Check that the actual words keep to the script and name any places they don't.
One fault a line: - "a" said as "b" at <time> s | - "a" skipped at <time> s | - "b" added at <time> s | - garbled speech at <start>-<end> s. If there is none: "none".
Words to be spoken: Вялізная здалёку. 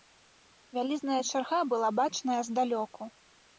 - "чарга была бачная" added at 1.3 s